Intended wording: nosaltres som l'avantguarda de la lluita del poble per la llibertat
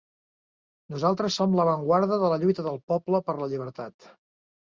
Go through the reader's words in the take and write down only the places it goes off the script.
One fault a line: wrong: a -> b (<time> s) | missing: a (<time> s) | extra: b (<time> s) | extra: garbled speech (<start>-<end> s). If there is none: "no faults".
no faults